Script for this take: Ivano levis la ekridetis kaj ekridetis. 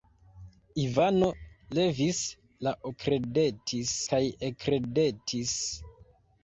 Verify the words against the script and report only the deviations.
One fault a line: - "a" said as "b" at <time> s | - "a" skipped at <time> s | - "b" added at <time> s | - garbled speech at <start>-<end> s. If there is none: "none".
none